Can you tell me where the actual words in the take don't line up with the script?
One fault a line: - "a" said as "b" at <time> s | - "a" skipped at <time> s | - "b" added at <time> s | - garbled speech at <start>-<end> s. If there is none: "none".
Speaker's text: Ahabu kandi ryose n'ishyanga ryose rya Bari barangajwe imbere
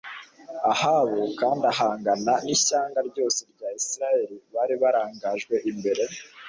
- "ryose" said as "ahangana" at 1.7 s
- "Isirayeli" added at 3.8 s